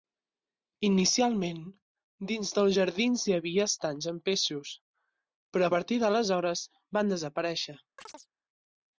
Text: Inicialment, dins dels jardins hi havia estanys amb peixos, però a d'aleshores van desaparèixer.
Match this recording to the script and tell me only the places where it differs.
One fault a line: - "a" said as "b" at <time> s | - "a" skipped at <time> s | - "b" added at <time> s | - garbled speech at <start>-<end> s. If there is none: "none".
- "partir" added at 5.8 s